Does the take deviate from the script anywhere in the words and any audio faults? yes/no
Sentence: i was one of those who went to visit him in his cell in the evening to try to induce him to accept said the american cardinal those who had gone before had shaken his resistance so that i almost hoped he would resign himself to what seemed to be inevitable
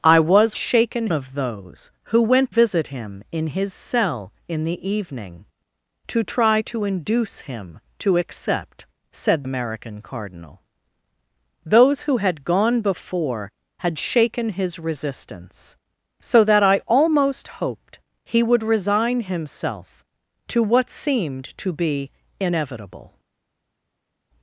yes